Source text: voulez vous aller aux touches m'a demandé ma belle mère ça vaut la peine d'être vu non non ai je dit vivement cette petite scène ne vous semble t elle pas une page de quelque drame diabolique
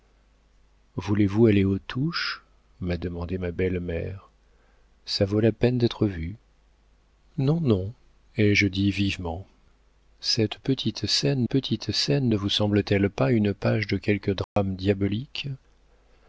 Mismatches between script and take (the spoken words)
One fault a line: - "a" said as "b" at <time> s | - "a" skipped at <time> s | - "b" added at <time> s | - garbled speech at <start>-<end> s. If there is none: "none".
- "petite scène" added at 11.4 s